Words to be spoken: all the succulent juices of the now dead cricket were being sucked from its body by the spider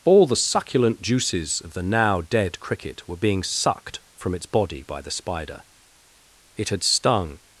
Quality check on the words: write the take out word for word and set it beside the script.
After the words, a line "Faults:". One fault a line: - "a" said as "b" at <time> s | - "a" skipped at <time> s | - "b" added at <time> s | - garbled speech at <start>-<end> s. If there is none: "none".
all the succulent juices of the now dead cricket were being sucked from its body by the spider it had stung
Faults:
- "it had stung" added at 6.6 s